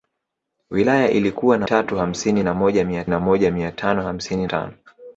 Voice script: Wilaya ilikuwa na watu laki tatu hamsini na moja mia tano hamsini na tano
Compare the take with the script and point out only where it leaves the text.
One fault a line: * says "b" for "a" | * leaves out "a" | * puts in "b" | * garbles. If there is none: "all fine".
* leaves out "watu laki"
* puts in "na moja mia"
* leaves out "na"